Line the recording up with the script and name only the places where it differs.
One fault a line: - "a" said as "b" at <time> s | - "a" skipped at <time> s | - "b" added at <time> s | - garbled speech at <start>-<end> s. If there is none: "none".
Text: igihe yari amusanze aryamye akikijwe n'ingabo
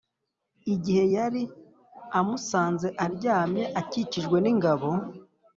none